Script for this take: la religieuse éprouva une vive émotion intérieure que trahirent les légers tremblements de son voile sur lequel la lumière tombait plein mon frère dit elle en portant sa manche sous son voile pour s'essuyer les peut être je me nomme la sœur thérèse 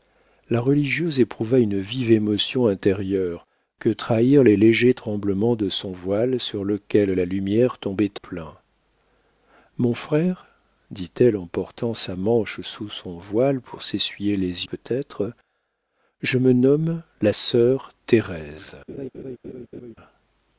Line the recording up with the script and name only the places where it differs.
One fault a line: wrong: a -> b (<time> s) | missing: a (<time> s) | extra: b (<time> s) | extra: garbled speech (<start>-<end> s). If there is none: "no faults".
no faults